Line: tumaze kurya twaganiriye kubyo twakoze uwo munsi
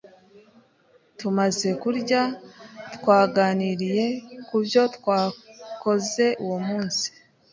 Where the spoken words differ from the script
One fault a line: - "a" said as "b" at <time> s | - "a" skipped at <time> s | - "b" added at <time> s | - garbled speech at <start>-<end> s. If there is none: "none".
none